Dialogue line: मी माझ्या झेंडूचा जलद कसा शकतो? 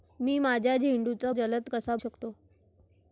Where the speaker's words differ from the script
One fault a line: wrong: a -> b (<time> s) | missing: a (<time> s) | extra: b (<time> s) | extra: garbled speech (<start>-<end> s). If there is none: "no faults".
no faults